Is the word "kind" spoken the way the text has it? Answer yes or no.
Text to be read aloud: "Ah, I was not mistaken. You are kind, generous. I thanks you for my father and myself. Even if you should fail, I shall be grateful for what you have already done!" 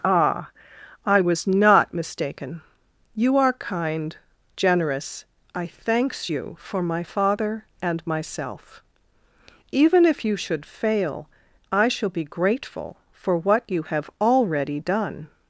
yes